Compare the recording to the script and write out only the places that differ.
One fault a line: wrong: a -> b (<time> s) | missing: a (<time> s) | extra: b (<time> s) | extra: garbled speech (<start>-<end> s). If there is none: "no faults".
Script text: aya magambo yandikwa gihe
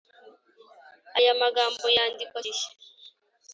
no faults